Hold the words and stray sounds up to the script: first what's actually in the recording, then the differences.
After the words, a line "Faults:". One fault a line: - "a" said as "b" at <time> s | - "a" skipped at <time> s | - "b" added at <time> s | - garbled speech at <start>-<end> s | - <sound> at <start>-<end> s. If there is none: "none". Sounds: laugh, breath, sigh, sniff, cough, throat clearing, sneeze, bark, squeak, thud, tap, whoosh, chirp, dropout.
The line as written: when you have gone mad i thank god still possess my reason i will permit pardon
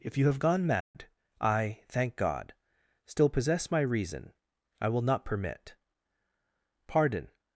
if you have gone mad i thank god still possess my reason i will not permit pardon
Faults:
- "when" said as "if" at 0.0 s
- dropout at 0.8-0.9 s
- "not" added at 5.0 s